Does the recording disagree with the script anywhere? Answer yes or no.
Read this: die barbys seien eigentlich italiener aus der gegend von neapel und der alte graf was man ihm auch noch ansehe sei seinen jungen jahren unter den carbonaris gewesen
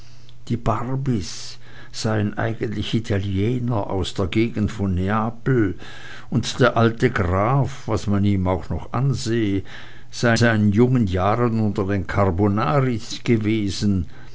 no